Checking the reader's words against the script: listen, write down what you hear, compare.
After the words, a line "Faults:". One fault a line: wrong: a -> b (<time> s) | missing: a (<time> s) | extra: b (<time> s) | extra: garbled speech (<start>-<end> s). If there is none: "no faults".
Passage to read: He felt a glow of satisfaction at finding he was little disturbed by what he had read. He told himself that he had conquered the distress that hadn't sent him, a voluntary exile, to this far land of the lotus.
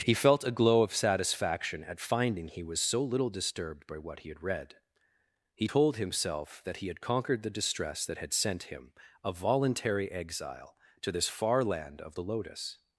He felt a glow of satisfaction at finding he was so little disturbed by what he had read. He told himself that he had conquered the distress that had sent him, a voluntary exile, to this far land of the lotus.
Faults:
extra: so (2.8 s)
wrong: hadn't -> had (8.2 s)